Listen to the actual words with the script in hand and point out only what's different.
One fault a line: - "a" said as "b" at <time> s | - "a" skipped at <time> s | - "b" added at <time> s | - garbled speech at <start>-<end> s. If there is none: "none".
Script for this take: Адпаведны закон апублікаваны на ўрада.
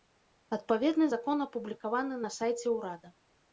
- "сайце" added at 2.4 s